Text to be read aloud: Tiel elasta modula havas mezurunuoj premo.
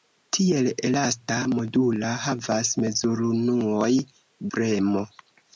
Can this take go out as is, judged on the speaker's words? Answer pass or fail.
pass